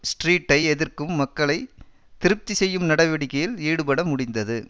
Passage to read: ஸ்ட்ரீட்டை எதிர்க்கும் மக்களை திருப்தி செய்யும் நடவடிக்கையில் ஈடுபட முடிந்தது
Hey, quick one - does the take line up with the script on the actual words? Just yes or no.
yes